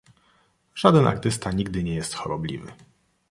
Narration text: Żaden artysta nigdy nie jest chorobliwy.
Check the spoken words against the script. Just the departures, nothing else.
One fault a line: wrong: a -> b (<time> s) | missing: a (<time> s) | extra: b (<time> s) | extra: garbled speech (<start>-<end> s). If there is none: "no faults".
no faults